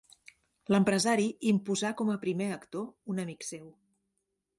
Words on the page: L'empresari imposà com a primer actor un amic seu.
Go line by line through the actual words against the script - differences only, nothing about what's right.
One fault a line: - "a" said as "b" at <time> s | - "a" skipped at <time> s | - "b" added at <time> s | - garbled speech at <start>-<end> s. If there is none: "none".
none